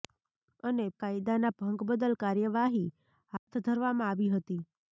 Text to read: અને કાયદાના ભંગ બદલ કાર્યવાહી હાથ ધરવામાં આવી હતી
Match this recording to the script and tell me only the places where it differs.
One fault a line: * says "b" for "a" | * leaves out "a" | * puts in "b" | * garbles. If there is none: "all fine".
all fine